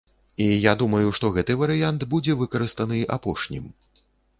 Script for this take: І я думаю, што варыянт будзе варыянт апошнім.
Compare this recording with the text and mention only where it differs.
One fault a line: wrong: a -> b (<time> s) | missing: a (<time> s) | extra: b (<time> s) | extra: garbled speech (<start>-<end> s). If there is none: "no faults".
extra: гэты (1.4 s)
wrong: варыянт -> выкарыстаны (2.5 s)